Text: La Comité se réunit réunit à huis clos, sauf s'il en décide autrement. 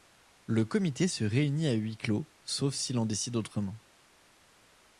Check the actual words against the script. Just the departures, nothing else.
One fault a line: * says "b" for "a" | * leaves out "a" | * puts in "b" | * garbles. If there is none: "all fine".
* says "Le" for "La"
* leaves out "réunit"